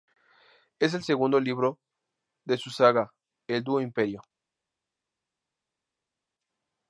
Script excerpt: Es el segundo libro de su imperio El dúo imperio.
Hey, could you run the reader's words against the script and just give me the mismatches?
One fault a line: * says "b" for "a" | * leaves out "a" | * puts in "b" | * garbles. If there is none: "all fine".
* says "saga" for "imperio"